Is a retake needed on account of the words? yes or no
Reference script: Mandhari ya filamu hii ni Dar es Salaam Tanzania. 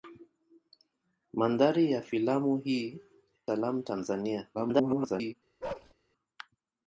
yes